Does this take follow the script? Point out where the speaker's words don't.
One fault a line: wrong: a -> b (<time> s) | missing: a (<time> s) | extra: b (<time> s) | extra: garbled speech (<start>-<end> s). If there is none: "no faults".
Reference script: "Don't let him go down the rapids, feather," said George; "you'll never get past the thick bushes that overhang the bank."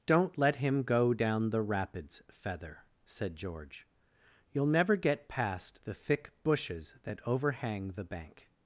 no faults